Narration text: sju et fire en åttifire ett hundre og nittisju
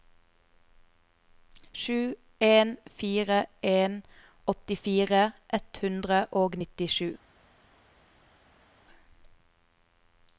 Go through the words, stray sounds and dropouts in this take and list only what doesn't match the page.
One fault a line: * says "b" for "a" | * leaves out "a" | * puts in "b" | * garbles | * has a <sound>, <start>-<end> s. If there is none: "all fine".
* says "en" for "et"